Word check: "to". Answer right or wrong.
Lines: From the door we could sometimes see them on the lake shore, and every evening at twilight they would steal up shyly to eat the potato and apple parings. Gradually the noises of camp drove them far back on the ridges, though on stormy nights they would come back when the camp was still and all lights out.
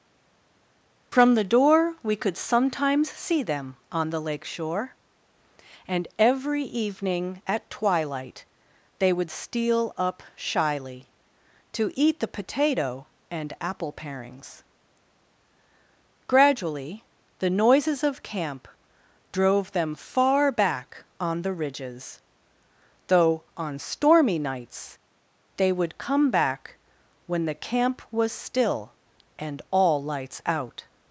right